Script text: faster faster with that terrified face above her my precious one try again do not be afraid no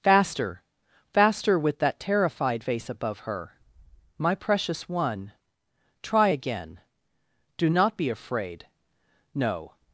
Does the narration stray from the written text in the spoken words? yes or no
no